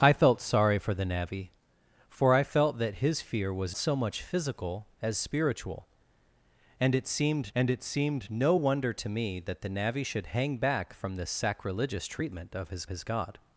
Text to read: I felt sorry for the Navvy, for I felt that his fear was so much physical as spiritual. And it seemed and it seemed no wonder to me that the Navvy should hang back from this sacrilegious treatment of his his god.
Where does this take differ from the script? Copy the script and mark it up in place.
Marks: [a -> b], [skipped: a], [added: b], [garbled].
I felt sorry for the Navvy, for I felt that his fear was so much physical as spiritual. And it seemed and it seemed no wonder to me that the Navvy should hang back from this sacrilegious treatment of his his god.